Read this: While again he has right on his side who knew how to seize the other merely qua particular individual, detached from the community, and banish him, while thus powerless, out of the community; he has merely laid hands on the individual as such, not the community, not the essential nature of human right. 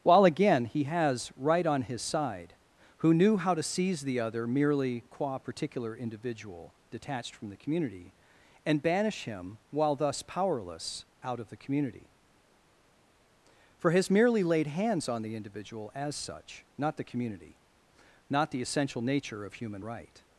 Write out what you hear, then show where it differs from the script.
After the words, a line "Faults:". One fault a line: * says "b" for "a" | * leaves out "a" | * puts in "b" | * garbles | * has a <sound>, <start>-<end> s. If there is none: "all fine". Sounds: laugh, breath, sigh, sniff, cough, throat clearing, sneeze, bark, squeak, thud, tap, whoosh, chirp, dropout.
While again he has right on his side who knew how to seize the other merely qua particular individual, detached from the community, and banish him, while thus powerless, out of the community; for has merely laid hands on the individual as such, not the community, not the essential nature of human right.
Faults:
* says "for" for "he"